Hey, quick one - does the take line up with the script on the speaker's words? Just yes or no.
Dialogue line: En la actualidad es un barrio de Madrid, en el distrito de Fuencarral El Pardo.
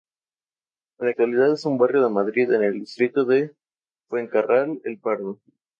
yes